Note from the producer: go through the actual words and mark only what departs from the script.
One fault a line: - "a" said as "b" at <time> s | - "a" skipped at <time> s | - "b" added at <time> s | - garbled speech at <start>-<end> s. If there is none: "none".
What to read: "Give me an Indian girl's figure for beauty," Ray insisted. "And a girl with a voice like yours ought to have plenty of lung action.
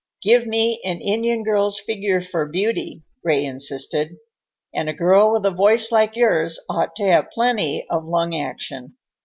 none